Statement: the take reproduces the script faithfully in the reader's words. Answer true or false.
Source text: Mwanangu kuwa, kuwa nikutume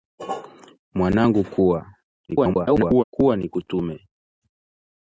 false